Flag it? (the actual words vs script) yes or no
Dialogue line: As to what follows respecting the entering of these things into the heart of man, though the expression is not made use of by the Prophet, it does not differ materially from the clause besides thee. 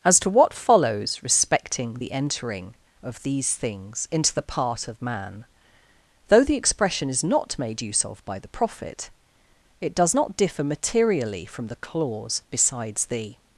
yes